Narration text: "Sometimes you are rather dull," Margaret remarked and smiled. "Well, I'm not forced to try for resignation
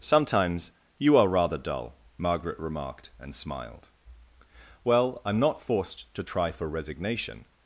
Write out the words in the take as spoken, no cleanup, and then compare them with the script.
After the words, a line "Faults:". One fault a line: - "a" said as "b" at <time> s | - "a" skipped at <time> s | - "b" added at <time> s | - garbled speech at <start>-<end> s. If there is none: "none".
"Sometimes you are rather dull," Margaret remarked and smiled. "Well, I'm not forced to try for resignation
Faults:
none